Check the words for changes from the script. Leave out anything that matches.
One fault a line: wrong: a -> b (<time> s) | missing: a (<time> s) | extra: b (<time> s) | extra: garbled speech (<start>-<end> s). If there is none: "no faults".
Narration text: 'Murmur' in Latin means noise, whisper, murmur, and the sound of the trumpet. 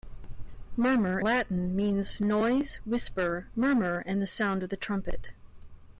missing: in (1.2 s)